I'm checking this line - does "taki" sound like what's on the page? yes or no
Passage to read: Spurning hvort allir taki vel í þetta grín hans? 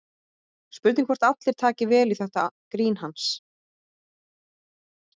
yes